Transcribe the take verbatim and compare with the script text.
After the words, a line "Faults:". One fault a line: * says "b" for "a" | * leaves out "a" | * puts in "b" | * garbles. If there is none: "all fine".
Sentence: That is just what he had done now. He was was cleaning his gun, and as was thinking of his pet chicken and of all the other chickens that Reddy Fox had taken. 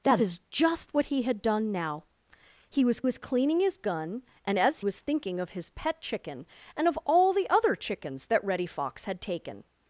That is just what he had done now. He was was cleaning his gun, and as was thinking of his pet chicken and of all the other chickens that Reddy Fox had taken.
Faults:
all fine